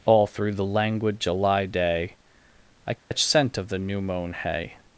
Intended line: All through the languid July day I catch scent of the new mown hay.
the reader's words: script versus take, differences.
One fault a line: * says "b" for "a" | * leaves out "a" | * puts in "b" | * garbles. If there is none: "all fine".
all fine